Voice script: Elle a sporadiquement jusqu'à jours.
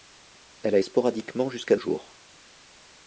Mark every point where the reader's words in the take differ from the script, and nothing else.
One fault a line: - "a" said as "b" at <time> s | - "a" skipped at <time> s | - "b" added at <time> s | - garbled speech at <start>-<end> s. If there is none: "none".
none